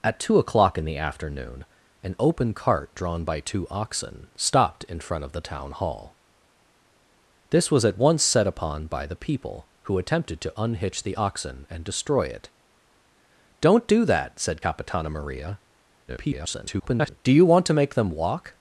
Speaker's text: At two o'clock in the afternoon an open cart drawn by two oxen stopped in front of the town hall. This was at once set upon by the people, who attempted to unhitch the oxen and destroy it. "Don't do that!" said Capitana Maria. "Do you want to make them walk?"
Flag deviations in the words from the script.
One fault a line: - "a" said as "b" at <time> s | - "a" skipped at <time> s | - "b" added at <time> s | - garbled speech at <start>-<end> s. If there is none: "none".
- garbled speech at 16.1-17.2 s